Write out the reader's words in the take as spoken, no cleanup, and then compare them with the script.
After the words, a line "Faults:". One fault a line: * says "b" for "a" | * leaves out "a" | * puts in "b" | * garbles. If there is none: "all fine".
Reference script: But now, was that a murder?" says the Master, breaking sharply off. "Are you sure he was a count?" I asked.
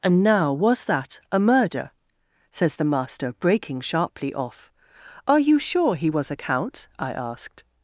And now, was that a murder?" says the Master, breaking sharply off. "Are you sure he was a count?" I asked.
Faults:
* says "And" for "But"